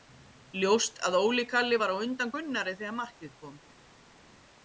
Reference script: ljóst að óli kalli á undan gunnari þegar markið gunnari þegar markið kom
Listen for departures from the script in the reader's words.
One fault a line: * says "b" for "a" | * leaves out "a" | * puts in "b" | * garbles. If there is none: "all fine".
* puts in "var"
* leaves out "gunnari þegar markið"